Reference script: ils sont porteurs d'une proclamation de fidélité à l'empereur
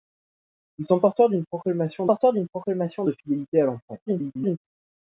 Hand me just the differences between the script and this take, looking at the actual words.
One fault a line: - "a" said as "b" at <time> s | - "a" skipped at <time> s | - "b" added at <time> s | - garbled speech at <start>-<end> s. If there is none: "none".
- "porteurs d'une proclamation" added at 2.0 s
- garbled speech at 4.1-4.6 s